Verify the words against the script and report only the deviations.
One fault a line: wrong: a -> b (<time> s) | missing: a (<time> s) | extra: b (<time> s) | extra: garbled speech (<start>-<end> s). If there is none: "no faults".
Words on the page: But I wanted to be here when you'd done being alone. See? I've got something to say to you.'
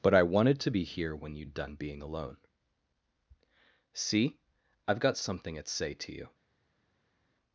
wrong: to -> at (5.6 s)